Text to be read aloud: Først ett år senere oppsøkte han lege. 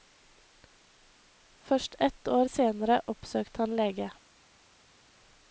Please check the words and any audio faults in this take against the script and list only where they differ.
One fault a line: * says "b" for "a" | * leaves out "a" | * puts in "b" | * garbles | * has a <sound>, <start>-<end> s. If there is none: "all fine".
all fine